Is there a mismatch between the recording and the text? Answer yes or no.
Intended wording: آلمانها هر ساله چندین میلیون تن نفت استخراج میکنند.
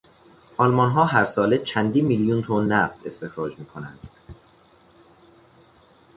no